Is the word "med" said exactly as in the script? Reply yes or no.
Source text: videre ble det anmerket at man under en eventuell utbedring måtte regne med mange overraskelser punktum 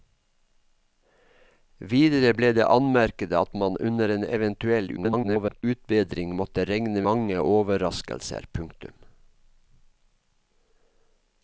no